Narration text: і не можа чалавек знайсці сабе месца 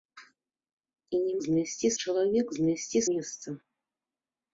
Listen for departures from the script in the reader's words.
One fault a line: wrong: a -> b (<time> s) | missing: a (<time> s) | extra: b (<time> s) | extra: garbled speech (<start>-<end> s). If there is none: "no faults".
wrong: можа -> знайсці (1.5 s)
missing: сабе (3.0 s)